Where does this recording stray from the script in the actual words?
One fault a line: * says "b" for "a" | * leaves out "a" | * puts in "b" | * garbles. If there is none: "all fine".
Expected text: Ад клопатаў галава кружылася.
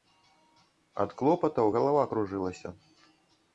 all fine